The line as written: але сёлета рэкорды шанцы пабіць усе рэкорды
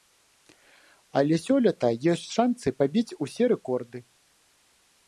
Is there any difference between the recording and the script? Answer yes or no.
yes